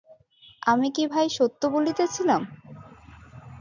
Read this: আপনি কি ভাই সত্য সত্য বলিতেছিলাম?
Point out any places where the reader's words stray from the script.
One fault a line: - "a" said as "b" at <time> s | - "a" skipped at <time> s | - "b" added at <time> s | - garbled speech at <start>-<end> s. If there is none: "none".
- "আপনি" said as "আমি" at 0.6 s
- "সত্য" skipped at 1.6 s